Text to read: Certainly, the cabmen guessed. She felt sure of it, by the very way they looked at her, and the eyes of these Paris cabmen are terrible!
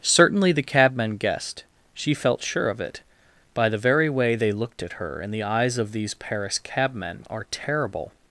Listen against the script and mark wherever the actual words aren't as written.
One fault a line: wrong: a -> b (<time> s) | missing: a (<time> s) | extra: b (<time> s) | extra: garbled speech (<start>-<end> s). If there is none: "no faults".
no faults